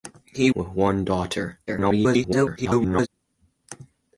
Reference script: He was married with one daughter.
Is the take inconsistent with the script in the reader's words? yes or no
yes